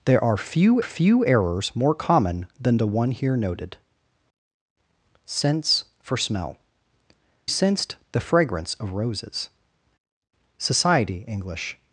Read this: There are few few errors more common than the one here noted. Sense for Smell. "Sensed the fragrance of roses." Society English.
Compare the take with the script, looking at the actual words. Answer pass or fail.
pass